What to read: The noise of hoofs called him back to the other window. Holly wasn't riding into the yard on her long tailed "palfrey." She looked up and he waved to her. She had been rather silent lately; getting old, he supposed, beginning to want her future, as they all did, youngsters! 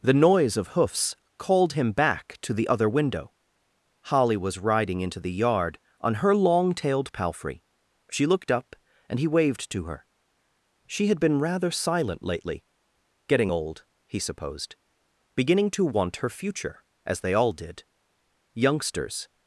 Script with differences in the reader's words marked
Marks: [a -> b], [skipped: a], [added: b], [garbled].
The noise of hoofs called him back to the other window. Holly [wasn't -> was] riding into the yard on her long tailed "palfrey." She looked up and he waved to her. She had been rather silent lately; getting old, he supposed, beginning to want her future, as they all did, youngsters!